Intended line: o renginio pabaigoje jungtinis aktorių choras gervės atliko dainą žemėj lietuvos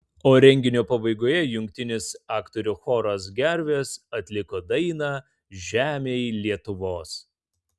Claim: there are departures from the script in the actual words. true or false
false